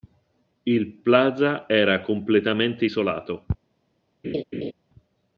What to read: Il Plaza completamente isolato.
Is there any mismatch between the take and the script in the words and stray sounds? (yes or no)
yes